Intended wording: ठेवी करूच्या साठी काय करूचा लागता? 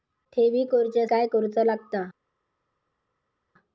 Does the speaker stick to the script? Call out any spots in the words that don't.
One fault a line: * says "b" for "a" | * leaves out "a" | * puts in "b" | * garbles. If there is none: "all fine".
* leaves out "साठी"